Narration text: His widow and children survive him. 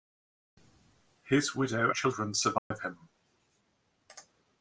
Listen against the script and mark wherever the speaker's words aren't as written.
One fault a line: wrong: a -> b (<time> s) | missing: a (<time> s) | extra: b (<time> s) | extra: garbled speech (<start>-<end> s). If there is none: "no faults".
missing: and (1.9 s)